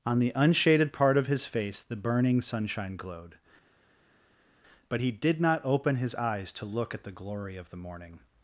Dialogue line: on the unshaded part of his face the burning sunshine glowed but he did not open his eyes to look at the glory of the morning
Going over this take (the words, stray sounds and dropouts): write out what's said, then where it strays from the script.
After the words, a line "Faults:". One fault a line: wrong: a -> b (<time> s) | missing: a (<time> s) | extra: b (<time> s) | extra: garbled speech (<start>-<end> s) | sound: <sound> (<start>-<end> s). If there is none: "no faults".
on the unshaded part of his face the burning sunshine glowed but he did not open his eyes to look at the glory of the morning
Faults:
no faults